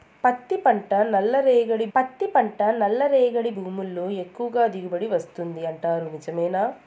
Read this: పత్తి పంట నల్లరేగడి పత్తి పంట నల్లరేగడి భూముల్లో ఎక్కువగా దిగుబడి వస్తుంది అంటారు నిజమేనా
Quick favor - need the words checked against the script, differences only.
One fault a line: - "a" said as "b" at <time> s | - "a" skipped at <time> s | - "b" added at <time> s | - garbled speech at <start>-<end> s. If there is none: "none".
none